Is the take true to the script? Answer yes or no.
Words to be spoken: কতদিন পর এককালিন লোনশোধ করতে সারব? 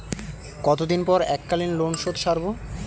no